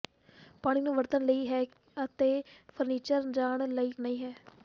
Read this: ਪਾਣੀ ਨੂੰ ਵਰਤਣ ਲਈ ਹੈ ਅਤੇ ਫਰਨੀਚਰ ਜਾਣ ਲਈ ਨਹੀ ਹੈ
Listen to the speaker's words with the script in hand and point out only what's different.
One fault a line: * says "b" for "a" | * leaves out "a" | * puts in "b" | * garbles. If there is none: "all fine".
all fine